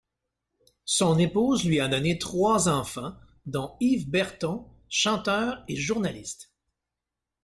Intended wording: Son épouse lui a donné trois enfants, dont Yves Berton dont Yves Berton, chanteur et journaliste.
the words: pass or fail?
fail